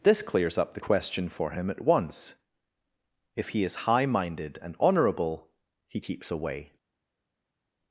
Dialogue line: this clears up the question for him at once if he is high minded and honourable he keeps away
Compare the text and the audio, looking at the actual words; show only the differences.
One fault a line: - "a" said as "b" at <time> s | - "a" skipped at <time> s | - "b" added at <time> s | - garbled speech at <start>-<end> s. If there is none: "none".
none